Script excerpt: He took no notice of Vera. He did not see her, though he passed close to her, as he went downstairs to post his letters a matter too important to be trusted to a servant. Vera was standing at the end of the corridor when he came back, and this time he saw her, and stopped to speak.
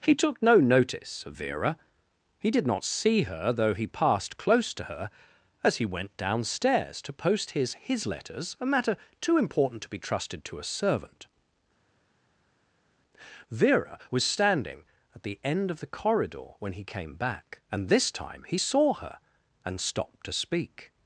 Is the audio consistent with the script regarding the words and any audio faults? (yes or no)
no